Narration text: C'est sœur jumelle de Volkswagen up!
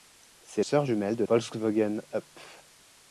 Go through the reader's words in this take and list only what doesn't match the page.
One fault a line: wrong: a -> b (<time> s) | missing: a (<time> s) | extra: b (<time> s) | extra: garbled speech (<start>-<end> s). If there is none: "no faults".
no faults